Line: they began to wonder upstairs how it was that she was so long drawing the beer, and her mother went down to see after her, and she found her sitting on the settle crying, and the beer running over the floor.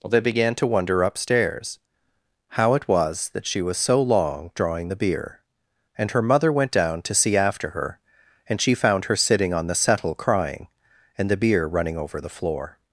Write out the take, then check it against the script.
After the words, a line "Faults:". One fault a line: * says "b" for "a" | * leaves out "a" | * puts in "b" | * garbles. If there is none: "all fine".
they began to wonder upstairs how it was that she was so long drawing the beer, and her mother went down to see after her, and she found her sitting on the settle crying, and the beer running over the floor.
Faults:
all fine